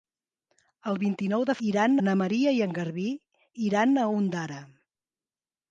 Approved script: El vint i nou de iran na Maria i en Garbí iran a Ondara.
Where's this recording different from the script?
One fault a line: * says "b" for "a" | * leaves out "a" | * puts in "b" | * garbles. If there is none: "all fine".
all fine